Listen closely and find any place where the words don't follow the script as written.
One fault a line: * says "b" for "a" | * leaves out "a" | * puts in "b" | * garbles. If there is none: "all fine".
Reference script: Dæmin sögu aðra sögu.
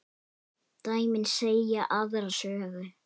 * says "segja" for "sögu"